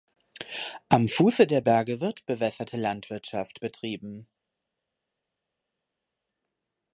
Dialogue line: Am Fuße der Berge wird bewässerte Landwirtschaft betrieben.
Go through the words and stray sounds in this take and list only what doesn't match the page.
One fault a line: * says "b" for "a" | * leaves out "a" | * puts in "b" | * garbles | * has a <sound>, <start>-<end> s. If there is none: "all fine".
all fine